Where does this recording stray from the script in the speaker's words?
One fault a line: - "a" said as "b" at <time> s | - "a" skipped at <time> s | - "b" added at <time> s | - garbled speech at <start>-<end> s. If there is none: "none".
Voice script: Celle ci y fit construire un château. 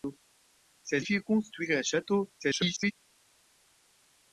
- "ci" skipped at 1.0 s
- garbled speech at 2.4-2.9 s